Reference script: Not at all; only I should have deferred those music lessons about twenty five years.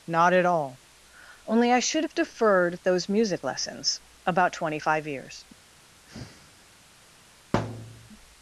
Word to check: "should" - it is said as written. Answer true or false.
true